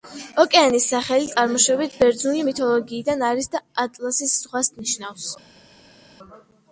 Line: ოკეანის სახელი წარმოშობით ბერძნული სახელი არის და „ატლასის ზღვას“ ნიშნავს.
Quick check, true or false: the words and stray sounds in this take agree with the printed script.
false